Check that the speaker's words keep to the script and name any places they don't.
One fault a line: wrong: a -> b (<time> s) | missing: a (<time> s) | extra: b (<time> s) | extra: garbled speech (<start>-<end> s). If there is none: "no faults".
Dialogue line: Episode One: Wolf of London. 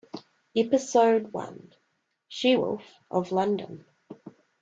extra: She (2.3 s)